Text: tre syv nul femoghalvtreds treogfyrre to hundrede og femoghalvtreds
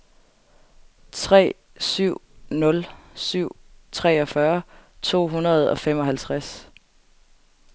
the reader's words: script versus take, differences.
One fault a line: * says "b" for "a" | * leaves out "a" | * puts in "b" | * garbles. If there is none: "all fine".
* says "syv" for "femoghalvtreds"